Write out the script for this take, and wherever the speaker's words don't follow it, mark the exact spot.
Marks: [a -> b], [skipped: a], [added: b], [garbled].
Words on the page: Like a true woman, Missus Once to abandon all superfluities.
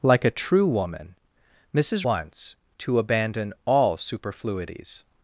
Like a true woman, Missus Once to abandon all superfluities.